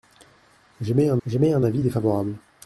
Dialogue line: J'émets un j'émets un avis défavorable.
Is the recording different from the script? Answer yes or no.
no